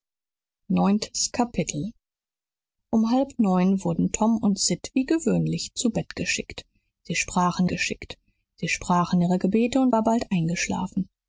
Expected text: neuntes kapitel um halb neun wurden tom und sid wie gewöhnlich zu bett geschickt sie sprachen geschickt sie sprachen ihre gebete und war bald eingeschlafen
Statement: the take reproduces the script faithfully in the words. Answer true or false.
true